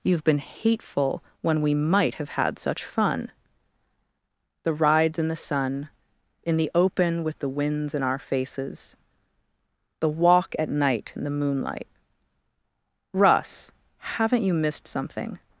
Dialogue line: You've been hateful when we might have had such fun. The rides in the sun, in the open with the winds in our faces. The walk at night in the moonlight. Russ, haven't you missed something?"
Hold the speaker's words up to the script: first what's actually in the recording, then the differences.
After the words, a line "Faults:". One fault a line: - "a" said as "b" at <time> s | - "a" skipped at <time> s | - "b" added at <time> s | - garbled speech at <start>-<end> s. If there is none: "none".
You've been hateful when we might have had such fun. The rides in the sun, in the open with the winds in our faces. The walk at night in the moonlight. Russ, haven't you missed something?"
Faults:
none